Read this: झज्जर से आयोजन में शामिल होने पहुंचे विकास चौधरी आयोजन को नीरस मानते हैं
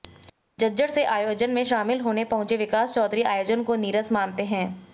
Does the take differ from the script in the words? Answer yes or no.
no